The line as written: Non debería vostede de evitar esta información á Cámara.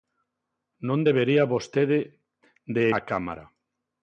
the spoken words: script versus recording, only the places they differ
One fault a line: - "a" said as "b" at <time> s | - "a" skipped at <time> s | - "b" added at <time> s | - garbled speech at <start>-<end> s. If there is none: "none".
- "evitar esta información" skipped at 2.8 s